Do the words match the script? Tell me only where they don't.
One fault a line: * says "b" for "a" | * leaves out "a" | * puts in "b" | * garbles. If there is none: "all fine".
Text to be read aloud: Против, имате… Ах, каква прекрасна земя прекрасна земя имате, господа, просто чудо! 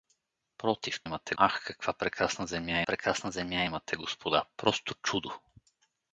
all fine